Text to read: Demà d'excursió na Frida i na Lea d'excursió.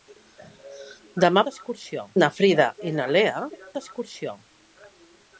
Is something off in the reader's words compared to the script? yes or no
no